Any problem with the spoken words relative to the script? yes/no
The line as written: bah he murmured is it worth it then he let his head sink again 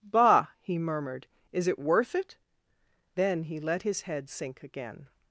no